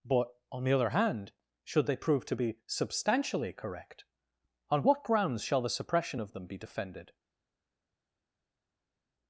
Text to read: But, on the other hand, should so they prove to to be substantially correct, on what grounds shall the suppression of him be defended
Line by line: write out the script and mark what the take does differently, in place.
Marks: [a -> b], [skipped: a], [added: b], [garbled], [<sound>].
But, on the other hand, should [skipped: so] they prove to [skipped: to] be substantially correct, on what grounds shall the suppression of [him -> them] be defended